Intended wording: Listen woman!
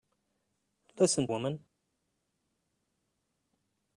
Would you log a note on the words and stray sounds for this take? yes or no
no